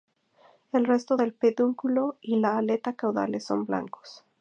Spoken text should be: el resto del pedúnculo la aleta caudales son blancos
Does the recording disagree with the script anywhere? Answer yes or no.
yes